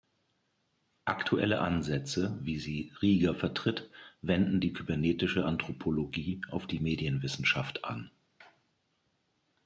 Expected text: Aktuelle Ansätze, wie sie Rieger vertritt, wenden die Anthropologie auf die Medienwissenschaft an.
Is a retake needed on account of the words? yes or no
yes